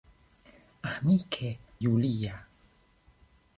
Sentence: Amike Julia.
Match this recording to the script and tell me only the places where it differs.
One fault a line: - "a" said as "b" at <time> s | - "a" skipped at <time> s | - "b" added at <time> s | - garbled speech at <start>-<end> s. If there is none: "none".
none